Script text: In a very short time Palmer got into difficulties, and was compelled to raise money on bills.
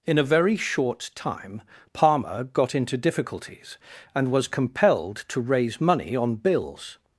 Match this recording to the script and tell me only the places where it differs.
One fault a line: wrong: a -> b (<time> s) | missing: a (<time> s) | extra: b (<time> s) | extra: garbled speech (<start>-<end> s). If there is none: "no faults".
no faults